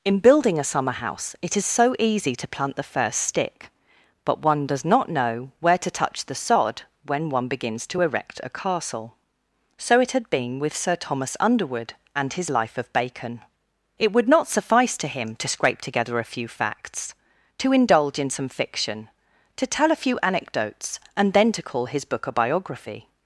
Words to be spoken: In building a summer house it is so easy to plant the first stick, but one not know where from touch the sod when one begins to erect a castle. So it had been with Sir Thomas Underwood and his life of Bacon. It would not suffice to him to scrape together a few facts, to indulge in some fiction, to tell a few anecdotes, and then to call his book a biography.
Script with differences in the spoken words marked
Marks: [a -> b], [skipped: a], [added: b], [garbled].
In building a summer house it is so easy to plant the first stick, but one [added: does] not know where [from -> to] touch the sod when one begins to erect a castle. So it had been with Sir Thomas Underwood and his life of Bacon. It would not suffice to him to scrape together a few facts, to indulge in some fiction, to tell a few anecdotes, and then to call his book a biography.